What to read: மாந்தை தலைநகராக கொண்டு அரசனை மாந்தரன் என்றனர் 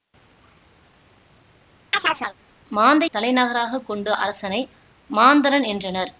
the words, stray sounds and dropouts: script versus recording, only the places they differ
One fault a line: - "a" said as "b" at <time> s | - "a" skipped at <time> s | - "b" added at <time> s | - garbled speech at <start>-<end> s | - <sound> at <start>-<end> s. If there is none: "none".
- chirp at 1.9-2.3 s